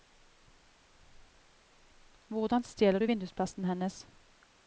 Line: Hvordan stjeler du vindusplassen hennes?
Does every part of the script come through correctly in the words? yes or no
yes